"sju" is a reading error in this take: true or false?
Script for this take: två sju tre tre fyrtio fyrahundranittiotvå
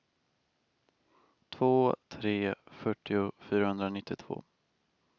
true